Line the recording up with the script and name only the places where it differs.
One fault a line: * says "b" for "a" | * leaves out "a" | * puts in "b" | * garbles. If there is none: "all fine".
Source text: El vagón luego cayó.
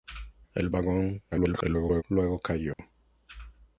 * garbles